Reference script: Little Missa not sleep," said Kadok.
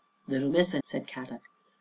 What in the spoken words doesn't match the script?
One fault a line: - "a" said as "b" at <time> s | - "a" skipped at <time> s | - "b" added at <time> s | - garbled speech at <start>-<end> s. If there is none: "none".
- "not sleep" skipped at 0.8 s